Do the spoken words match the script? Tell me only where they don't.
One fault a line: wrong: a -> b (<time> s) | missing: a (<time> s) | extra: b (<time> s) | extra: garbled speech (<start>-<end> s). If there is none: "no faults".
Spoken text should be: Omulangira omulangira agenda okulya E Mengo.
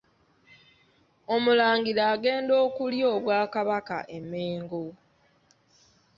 missing: omulangira (2.0 s)
extra: Obwakabaka (3.1 s)